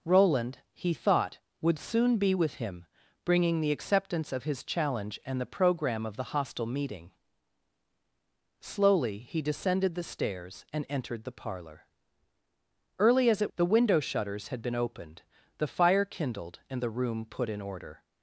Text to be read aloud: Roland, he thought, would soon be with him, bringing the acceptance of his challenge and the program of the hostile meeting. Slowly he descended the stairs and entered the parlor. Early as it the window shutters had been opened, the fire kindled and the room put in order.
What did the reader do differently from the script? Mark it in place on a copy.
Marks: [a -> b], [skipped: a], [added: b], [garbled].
Roland, he thought, would soon be with him, bringing the acceptance of his challenge and the program of the hostile meeting. Slowly he descended the stairs and entered the parlor. Early as it the window shutters had been opened, the fire kindled and the room put in order.